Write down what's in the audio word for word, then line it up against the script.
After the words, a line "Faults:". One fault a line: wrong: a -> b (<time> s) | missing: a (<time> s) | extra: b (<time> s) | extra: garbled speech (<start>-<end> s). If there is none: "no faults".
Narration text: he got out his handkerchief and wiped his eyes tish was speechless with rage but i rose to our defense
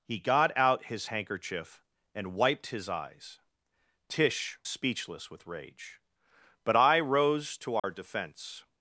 he got out his handkerchief and wiped his eyes tish speechless with rage but i rose to our defense
Faults:
missing: was (4.6 s)